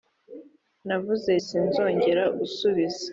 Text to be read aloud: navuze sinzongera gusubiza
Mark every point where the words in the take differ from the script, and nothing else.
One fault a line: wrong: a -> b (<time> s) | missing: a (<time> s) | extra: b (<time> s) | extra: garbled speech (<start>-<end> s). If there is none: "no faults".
no faults